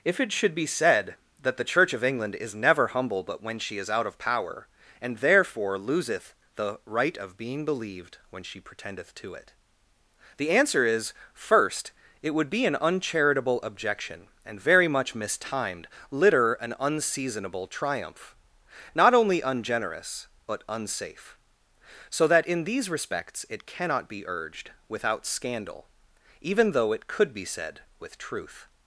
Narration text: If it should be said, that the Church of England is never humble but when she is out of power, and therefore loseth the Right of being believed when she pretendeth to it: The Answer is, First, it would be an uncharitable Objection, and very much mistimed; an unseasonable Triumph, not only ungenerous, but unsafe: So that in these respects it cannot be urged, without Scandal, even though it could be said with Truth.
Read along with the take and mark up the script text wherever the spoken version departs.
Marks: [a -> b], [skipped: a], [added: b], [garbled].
If it should be said, that the Church of England is never humble but when she is out of power, and therefore loseth the Right of being believed when she pretendeth to it: The Answer is, First, it would be an uncharitable Objection, and very much mistimed; [added: litter] an unseasonable Triumph, not only ungenerous, but unsafe: So that in these respects it cannot be urged, without Scandal, even though it could be said with Truth.